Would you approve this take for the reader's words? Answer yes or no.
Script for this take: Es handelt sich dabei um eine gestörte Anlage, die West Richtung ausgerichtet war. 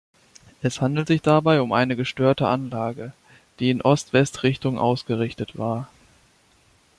no